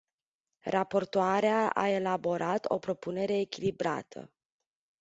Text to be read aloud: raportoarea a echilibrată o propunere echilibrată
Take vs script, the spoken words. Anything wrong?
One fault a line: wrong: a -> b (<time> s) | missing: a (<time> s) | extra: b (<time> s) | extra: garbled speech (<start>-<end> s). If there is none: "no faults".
wrong: echilibrată -> elaborat (1.9 s)